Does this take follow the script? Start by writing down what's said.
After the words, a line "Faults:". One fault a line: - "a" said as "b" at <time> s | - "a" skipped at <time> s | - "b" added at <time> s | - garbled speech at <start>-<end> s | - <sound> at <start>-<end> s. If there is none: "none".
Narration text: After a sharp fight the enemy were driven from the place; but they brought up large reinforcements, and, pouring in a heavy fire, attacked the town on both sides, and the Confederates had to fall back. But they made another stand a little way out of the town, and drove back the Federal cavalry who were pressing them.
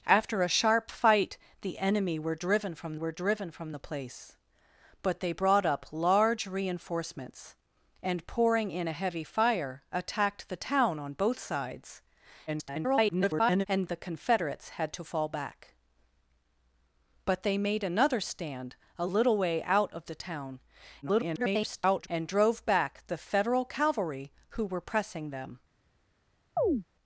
After a sharp fight the enemy were driven from were driven from the place; but they brought up large reinforcements, and, pouring in a heavy fire, attacked the town on both sides, [garbled] and the Confederates had to fall back. But they made another stand a little way out of the town, [garbled] and drove back the Federal cavalry who were pressing them.
Faults:
- "were driven from" added at 2.9 s
- garbled speech at 12.5-13.7 s
- garbled speech at 21.0-22.1 s
- chirp at 26.6-26.8 s